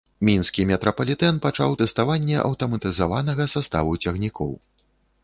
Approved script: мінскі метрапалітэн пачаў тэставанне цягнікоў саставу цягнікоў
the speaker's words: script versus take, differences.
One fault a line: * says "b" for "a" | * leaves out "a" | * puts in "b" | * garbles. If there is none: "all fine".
* says "аўтаматызаванага" for "цягнікоў"